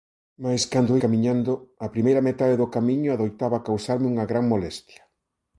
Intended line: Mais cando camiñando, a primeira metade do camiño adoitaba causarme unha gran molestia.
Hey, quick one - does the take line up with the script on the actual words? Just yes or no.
yes